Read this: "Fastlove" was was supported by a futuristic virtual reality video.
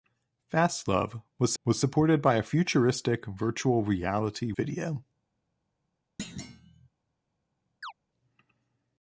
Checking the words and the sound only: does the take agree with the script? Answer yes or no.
no